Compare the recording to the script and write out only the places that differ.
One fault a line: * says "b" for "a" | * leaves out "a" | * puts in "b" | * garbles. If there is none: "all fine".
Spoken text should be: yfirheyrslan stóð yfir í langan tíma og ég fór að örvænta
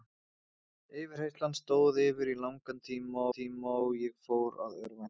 * puts in "tíma"